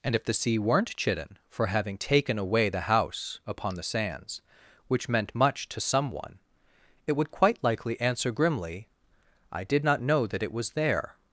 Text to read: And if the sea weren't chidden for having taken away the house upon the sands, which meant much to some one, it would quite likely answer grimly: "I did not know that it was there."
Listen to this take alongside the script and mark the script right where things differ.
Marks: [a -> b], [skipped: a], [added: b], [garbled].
And if the sea weren't chidden for having taken away the house upon the sands, which meant much to some one, it would quite likely answer grimly: "I did not know that it was there."